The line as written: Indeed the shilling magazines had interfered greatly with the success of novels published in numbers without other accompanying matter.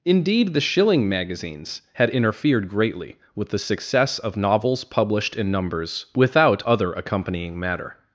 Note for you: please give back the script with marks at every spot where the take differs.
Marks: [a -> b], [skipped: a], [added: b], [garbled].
Indeed the shilling magazines had interfered greatly with the success of novels published in numbers without other accompanying matter.